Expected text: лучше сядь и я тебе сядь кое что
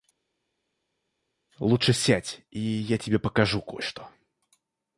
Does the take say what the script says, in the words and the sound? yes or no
no